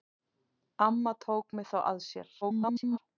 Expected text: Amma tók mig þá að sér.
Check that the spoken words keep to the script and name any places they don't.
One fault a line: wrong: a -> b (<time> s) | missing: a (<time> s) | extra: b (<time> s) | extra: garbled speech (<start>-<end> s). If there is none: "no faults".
extra: garbled speech (2.4-3.0 s)